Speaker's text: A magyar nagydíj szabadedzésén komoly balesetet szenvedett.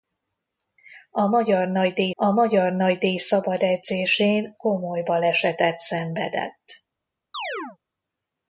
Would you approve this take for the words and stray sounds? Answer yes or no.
no